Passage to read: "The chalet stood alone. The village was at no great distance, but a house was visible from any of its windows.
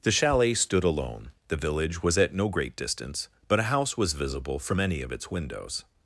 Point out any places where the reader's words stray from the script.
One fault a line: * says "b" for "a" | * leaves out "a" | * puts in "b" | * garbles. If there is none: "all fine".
all fine